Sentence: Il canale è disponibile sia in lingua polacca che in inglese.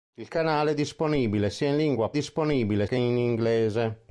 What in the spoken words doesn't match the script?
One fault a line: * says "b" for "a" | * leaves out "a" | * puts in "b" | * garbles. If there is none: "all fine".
* says "disponibile" for "polacca"